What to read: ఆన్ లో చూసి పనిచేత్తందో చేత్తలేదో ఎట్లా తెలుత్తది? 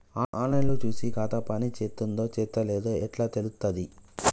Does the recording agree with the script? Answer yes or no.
no